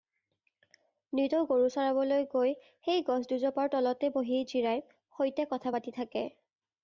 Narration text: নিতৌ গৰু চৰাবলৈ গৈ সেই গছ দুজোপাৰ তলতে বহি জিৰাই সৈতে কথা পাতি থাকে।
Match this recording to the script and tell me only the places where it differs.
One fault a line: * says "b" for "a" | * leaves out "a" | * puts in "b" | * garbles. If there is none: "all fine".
all fine